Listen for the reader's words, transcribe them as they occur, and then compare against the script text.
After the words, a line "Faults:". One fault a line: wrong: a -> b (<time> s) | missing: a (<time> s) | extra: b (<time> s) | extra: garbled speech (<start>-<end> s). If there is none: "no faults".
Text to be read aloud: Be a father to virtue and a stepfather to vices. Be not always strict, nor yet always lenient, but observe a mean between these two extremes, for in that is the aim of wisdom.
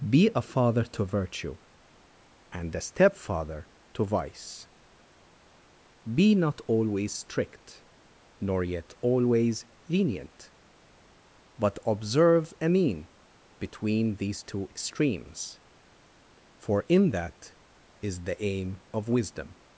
Be a father to virtue and a stepfather to vice. Be not always strict, nor yet always lenient, but observe a mean between these two extremes, for in that is the aim of wisdom.
Faults:
wrong: vices -> vice (4.0 s)